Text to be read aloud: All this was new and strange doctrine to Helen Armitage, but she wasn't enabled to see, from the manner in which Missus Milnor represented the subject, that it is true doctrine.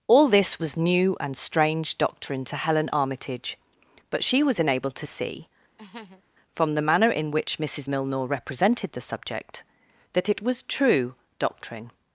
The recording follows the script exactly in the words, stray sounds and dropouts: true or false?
false